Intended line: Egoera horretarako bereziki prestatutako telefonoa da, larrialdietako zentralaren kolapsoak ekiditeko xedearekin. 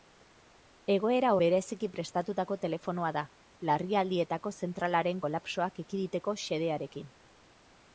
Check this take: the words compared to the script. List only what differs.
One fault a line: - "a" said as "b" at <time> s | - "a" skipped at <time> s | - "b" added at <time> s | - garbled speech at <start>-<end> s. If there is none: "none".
- "horretarako" skipped at 1.3 s